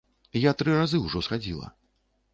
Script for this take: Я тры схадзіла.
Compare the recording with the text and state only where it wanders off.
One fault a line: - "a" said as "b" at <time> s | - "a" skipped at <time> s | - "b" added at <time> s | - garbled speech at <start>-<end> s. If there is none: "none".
- "разы ўжо" added at 0.8 s